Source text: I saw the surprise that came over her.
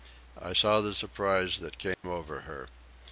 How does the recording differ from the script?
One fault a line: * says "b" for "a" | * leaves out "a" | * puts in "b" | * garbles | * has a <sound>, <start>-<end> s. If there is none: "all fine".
* has a dropout, 1.9-2.0 s